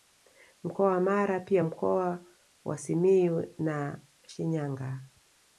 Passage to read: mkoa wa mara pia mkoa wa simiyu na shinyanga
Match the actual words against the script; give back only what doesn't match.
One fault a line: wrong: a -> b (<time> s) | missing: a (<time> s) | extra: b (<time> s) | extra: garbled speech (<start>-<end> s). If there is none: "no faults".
no faults